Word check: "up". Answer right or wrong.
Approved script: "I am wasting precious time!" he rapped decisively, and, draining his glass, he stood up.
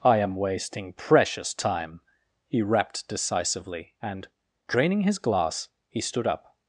right